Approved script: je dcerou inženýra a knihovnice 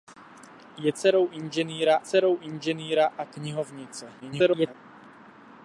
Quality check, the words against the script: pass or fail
fail